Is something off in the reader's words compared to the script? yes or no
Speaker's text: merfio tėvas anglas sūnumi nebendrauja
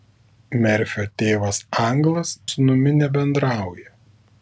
no